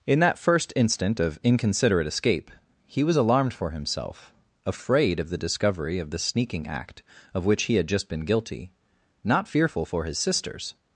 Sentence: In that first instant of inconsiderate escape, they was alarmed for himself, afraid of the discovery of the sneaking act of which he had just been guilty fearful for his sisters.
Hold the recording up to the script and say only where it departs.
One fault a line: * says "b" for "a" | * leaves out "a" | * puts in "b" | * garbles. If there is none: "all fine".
* says "he" for "they"
* puts in "not"